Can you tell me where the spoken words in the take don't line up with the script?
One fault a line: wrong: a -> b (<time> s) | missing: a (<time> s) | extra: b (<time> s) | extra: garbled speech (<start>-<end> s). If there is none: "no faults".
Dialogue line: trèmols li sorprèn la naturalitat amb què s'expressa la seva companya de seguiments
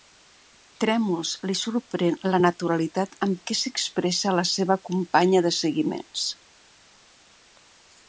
no faults